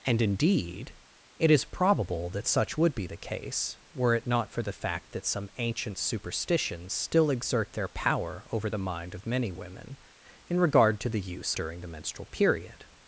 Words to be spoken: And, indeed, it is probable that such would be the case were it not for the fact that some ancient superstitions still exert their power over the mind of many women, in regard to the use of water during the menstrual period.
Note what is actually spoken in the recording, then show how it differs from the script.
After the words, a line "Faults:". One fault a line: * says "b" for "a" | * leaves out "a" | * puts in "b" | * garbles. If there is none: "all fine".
And, indeed, it is probable that such would be the case were it not for the fact that some ancient superstitions still exert their power over the mind of many women, in regard to the use during the menstrual period.
Faults:
* leaves out "of water"